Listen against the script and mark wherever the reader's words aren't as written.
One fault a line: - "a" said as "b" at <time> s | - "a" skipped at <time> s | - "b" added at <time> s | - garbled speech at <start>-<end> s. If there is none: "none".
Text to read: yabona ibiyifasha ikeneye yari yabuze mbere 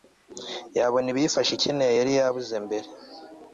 none